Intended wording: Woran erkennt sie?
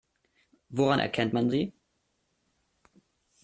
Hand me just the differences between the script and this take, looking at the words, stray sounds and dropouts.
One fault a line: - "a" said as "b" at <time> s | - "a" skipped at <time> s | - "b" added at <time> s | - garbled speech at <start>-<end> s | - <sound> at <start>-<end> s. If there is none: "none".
- "man" added at 1.3 s